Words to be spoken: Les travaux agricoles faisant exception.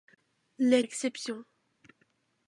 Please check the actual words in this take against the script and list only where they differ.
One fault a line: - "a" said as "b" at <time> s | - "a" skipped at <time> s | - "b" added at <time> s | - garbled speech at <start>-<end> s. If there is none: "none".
- "travaux agricoles faisant" skipped at 0.8 s